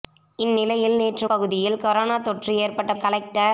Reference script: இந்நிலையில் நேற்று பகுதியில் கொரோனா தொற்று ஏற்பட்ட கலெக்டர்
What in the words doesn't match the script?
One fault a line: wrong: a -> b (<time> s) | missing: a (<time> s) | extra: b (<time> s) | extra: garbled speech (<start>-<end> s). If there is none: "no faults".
no faults